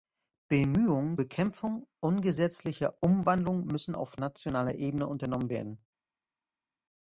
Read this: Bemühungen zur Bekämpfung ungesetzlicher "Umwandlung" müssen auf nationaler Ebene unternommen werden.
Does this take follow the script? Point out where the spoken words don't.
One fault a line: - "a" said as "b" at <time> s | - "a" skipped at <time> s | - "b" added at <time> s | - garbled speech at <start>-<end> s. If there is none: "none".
- "zur" skipped at 1.2 s